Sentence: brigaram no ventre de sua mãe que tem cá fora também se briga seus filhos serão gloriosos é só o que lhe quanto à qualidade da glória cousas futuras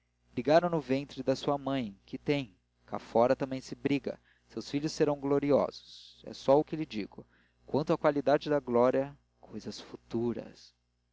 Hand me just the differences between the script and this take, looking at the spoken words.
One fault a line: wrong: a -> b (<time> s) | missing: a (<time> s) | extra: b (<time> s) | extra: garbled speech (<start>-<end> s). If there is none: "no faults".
extra: digo (6.8 s)